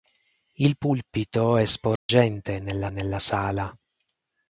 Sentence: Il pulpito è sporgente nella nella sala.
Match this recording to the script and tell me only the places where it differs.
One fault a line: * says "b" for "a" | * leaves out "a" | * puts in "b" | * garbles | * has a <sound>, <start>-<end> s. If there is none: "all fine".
* has a dropout, 2.0-2.1 s